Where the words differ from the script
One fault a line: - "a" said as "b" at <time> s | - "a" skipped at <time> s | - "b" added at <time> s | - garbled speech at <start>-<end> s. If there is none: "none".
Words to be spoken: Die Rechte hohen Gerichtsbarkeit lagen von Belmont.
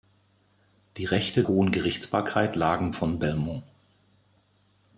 none